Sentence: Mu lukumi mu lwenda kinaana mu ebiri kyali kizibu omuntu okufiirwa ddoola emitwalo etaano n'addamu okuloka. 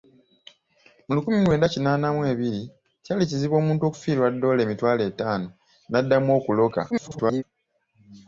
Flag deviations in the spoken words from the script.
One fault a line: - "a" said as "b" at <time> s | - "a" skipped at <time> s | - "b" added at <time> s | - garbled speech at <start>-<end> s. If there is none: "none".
- garbled speech at 6.9-7.4 s